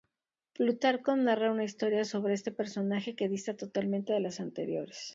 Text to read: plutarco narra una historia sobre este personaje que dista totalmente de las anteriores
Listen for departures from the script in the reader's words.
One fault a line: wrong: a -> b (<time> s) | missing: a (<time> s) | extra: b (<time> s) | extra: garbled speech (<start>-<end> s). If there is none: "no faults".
no faults